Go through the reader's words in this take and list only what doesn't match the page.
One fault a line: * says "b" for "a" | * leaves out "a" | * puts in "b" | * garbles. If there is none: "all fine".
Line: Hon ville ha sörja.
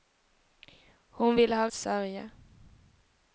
all fine